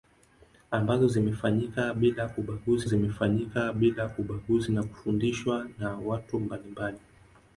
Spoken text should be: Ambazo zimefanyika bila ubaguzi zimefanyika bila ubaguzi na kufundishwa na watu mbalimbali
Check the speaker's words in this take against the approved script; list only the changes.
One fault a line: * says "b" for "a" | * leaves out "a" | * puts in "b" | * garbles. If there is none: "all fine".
all fine